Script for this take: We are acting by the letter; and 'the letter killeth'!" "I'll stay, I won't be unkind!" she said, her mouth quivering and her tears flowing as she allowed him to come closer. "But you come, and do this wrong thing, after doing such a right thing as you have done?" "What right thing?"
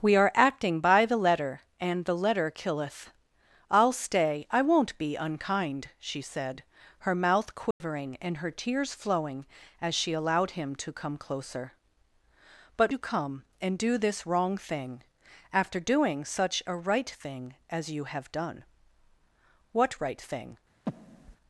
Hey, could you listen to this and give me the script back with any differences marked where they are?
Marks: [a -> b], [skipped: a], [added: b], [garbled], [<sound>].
We are acting by the letter; and 'the letter killeth'!" "I'll stay, I won't be unkind!" she said, her mouth quivering [dropout] and her tears flowing as she allowed him to come closer. "But you come, and do this wrong thing, after doing such a right thing as you have done?" "What right thing?" [breath]